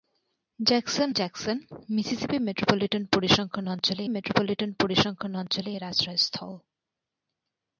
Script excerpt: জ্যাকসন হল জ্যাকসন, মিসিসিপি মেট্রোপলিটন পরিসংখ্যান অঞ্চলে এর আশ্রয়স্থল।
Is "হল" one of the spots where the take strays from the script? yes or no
yes